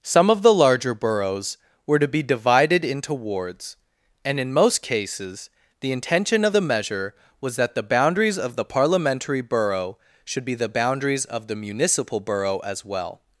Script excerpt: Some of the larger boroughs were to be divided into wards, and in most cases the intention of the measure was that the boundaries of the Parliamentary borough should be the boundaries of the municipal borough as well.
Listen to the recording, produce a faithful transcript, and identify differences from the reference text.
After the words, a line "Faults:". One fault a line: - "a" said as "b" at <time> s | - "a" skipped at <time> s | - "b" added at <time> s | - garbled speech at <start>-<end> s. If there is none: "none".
Some of the larger boroughs were to be divided into wards, and in most cases the intention of the measure was that the boundaries of the Parliamentary borough should be the boundaries of the municipal borough as well.
Faults:
none